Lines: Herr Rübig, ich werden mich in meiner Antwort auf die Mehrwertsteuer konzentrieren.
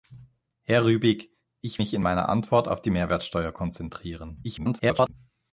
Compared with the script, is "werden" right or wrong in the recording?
wrong